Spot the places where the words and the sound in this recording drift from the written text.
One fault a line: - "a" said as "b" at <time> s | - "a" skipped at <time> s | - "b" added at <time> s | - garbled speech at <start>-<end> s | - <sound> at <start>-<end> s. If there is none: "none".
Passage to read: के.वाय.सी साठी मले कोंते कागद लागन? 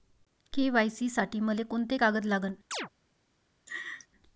- chirp at 2.7-2.9 s
- laugh at 3.7-4.1 s